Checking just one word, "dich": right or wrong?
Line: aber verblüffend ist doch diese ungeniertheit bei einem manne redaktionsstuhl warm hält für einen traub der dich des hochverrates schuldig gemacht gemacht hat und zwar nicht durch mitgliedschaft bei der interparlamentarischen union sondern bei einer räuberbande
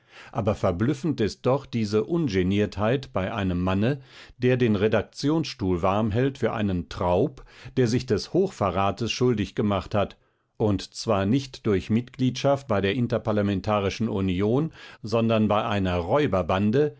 wrong